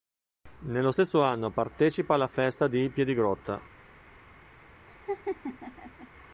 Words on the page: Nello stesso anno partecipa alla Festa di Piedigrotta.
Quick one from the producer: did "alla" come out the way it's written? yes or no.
yes